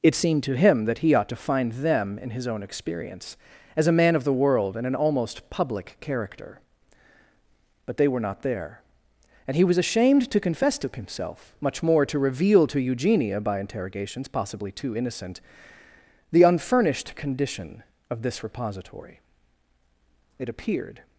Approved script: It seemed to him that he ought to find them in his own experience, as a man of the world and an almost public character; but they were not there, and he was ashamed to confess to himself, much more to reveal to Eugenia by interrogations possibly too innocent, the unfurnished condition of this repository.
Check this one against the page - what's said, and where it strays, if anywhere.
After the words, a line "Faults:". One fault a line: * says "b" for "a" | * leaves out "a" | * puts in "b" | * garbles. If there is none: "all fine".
It seemed to him that he ought to find them in his own experience, as a man of the world and an almost public character; but they were not there, and he was ashamed to confess to himself, much more to reveal to Eugenia by interrogations possibly too innocent, the unfurnished condition of this repository. It appeared
Faults:
* puts in "It appeared"